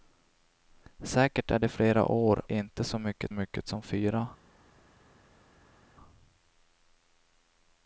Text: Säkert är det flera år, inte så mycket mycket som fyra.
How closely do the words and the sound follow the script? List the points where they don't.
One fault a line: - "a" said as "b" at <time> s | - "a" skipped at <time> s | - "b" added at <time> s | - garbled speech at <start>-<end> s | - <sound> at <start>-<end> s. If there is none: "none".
none